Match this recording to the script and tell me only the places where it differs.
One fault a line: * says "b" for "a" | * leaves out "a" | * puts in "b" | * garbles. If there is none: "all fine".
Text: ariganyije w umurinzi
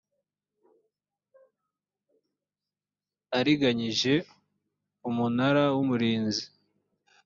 * puts in "umunara"